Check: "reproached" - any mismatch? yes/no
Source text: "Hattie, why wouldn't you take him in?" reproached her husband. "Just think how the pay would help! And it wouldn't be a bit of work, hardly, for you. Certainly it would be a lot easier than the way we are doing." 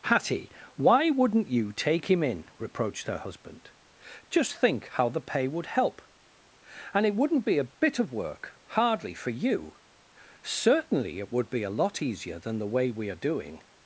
no